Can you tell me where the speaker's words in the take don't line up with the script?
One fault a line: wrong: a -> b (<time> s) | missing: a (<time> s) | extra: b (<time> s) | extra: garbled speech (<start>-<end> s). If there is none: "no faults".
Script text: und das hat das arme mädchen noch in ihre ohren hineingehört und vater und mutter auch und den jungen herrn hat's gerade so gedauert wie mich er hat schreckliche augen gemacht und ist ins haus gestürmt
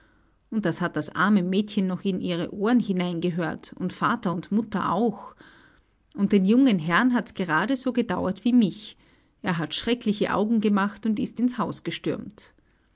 no faults